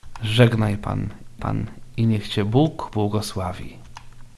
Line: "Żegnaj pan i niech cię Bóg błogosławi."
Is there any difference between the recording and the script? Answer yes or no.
yes